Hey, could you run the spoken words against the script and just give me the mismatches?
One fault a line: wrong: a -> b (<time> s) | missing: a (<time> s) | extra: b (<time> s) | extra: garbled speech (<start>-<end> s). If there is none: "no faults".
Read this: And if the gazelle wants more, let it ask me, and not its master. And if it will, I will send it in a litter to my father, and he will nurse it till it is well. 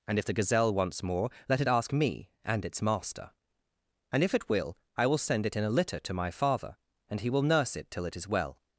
missing: not (2.6 s)